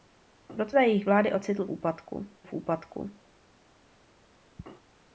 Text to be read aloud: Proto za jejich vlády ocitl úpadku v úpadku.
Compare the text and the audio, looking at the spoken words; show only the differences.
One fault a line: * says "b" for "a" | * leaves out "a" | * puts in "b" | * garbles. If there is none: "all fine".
all fine